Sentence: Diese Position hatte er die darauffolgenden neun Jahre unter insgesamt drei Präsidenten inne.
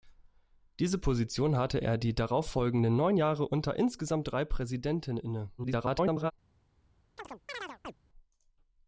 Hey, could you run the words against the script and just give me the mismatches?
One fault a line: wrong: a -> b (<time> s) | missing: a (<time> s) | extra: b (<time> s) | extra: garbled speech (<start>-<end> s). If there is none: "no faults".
extra: garbled speech (5.6-6.3 s)